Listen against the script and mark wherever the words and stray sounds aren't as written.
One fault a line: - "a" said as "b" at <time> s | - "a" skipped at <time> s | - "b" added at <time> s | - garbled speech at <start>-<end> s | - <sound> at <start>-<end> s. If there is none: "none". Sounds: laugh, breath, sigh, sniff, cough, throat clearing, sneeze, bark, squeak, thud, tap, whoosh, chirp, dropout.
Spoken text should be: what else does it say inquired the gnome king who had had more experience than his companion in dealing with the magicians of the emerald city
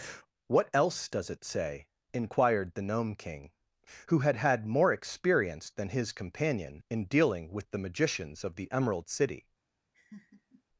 - laugh at 9.9-10.6 s